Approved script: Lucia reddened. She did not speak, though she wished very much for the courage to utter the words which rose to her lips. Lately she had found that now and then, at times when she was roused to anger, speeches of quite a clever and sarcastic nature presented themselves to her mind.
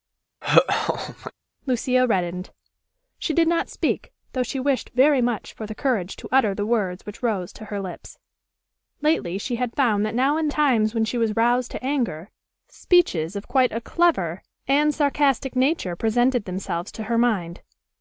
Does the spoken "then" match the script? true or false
false